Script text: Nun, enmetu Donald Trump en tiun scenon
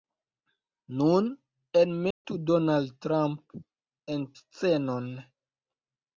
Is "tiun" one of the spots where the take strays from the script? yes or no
yes